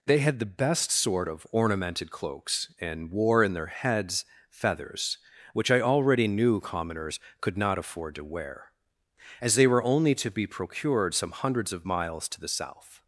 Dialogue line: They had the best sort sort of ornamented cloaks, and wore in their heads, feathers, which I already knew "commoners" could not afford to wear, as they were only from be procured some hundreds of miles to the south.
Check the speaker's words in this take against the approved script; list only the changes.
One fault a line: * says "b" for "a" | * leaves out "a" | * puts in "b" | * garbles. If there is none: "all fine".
* leaves out "sort"
* says "to" for "from"